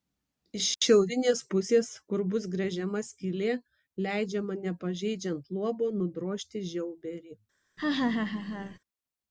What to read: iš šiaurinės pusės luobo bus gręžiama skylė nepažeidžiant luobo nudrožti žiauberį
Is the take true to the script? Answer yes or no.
no